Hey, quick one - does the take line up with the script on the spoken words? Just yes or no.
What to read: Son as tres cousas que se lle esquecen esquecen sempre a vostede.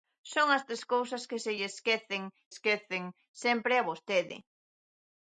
yes